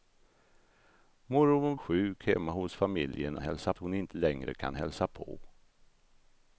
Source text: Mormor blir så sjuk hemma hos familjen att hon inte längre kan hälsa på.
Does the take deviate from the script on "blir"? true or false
true